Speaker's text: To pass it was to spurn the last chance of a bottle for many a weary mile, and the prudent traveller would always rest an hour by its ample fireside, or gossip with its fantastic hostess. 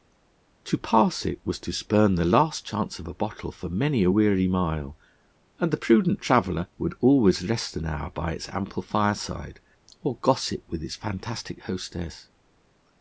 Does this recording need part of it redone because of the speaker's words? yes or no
no